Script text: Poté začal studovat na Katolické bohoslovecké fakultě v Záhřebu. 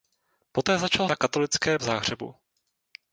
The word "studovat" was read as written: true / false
false